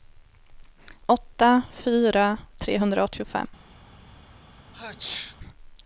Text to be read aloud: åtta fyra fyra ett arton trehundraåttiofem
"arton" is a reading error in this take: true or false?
true